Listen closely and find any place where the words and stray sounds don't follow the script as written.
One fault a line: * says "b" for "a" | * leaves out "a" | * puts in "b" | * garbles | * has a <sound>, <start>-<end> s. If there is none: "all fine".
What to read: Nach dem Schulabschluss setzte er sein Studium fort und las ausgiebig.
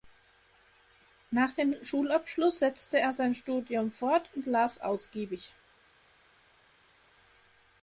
all fine